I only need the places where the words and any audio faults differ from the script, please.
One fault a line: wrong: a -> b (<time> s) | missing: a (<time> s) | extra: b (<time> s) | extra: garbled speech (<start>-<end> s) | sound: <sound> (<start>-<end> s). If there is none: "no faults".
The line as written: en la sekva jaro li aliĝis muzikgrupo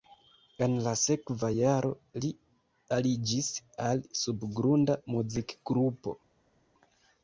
extra: al subgrunda (3.9 s)